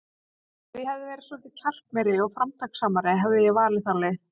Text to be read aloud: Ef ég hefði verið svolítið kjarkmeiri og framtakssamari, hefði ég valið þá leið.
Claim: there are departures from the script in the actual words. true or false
false